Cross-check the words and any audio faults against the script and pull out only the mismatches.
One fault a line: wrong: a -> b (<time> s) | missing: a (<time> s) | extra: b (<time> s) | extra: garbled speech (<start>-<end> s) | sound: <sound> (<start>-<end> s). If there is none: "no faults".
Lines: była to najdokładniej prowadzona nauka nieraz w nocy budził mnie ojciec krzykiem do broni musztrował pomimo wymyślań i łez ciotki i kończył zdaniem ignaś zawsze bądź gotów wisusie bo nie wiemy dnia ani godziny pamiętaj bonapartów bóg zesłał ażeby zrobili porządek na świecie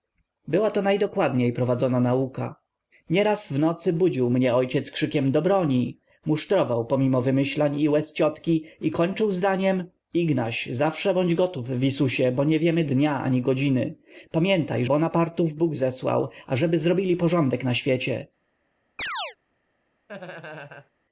sound: chirp (19.0-19.4 s)
sound: laugh (20.1-20.9 s)